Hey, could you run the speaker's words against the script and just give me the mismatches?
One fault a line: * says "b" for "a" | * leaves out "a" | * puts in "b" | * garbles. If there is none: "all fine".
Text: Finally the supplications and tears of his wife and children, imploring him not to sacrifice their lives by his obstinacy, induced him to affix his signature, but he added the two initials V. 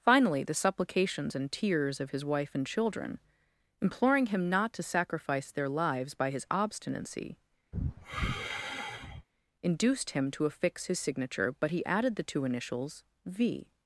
all fine